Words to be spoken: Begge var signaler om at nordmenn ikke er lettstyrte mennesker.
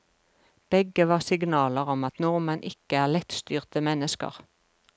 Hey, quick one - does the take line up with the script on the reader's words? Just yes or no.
yes